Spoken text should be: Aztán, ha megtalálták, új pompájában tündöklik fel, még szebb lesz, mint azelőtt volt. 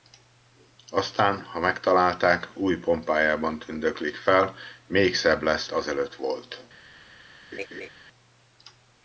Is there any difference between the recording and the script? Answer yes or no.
yes